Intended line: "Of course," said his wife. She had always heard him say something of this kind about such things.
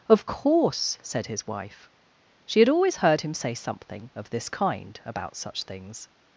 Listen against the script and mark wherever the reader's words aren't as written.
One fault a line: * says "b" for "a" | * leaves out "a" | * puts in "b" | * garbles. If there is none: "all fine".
all fine